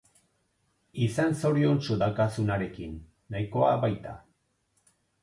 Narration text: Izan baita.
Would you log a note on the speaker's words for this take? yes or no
yes